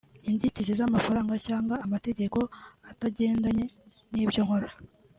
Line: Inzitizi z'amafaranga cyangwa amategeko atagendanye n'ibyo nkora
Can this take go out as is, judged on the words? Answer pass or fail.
pass